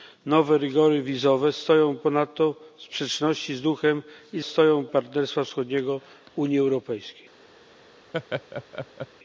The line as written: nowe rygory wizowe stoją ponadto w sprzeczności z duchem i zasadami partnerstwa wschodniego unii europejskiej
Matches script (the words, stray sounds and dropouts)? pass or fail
fail